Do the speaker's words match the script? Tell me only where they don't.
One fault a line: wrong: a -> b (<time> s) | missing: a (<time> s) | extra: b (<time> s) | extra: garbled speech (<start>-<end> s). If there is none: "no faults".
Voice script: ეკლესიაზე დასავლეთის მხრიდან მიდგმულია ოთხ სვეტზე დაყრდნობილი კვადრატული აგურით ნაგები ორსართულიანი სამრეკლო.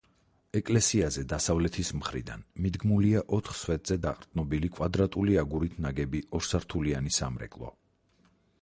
no faults